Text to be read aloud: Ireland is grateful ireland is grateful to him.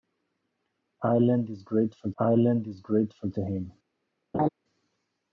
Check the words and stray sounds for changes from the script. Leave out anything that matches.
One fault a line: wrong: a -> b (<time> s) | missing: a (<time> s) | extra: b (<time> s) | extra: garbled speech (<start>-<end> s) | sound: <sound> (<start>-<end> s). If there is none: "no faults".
sound: laugh (4.3-4.5 s)